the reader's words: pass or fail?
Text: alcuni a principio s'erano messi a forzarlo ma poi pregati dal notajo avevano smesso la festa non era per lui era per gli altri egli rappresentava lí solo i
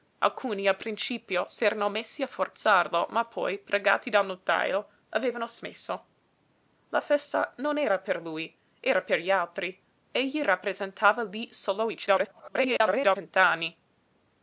fail